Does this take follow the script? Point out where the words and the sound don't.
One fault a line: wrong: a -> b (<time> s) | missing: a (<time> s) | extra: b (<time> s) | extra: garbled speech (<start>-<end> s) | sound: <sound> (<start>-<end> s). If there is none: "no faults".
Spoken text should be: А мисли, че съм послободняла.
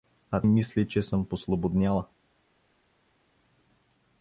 no faults